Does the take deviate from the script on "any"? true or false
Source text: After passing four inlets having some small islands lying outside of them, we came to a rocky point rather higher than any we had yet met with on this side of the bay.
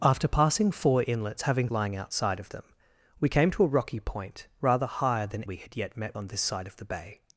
true